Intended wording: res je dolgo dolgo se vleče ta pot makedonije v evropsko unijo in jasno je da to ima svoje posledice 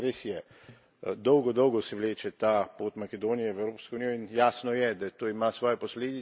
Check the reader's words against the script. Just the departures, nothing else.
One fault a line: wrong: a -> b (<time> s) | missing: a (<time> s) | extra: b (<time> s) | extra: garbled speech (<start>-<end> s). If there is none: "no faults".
no faults